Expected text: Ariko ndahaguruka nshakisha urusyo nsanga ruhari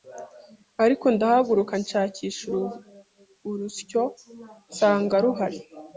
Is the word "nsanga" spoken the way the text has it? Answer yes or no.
yes